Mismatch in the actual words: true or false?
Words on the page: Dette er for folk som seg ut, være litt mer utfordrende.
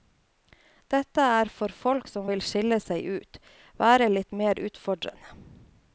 true